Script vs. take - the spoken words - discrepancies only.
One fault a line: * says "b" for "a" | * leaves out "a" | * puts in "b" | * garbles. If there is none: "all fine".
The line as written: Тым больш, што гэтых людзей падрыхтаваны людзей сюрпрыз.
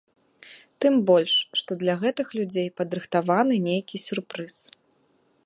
* puts in "для"
* says "нейкі" for "людзей"